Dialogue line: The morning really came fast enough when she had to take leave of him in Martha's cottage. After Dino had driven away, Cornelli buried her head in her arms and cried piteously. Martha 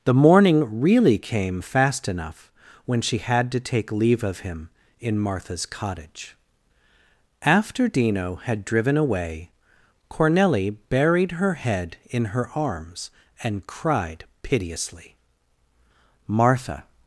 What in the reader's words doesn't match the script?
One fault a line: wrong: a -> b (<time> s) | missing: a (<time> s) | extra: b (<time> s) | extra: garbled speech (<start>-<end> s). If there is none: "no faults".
no faults